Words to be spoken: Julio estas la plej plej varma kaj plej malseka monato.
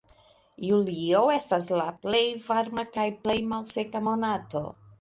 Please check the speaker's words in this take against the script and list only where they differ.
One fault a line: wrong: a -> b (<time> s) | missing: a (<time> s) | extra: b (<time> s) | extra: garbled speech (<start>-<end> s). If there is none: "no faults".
missing: plej (2.2 s)